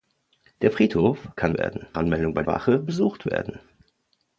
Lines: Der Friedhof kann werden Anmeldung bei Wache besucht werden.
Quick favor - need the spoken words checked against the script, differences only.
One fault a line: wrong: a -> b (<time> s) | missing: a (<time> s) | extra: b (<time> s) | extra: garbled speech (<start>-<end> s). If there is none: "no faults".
no faults